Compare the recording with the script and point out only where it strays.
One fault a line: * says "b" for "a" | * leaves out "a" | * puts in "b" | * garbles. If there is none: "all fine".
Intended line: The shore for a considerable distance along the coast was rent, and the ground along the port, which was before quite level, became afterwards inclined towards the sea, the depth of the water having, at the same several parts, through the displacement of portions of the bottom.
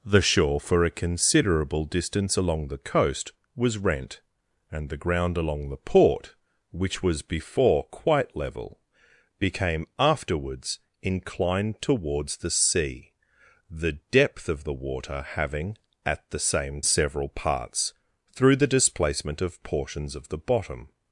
all fine